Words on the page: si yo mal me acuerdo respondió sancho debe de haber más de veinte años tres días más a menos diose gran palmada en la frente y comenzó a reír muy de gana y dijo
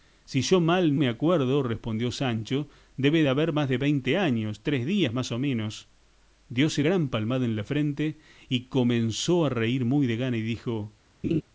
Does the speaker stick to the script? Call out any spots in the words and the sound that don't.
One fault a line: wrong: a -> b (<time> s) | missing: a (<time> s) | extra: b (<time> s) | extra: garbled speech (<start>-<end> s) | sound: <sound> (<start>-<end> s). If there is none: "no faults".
sound: laugh (11.2-11.4 s)